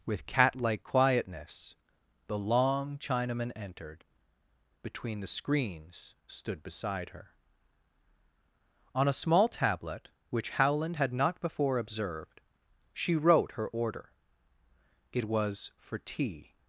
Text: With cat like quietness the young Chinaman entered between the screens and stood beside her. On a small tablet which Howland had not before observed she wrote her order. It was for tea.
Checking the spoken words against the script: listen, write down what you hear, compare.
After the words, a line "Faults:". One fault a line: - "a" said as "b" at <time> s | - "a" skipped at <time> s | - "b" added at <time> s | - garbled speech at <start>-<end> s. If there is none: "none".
With cat like quietness the long Chinaman entered between the screens stood beside her. On a small tablet which Howland had not before observed she wrote her order. It was for tea.
Faults:
- "young" said as "long" at 2.4 s
- "and" skipped at 6.1 s